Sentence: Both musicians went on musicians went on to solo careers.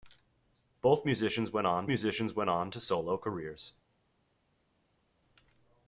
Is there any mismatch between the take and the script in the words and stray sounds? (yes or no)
no